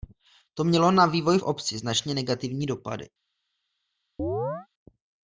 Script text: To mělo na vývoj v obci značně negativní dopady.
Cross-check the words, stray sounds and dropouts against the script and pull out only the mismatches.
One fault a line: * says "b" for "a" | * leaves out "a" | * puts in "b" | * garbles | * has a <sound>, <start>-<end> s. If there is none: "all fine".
* has a chirp, 4.2-4.7 s